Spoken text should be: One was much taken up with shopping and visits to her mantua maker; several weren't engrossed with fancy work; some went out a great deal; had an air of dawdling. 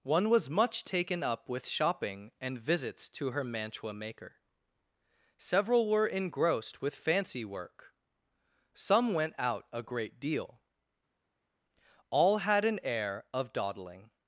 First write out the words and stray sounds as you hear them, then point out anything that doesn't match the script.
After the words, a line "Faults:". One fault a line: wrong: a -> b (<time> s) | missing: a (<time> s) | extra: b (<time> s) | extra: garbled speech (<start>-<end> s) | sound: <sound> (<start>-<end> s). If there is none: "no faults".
One was much taken up with shopping and visits to her mantua maker; several were engrossed with fancy work; some went out a great deal; all had an air of dawdling.
Faults:
wrong: weren't -> were (5.9 s)
extra: all (12.1 s)